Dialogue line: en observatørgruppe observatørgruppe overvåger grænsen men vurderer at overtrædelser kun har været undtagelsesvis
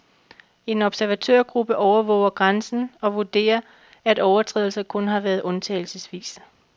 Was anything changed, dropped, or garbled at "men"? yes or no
yes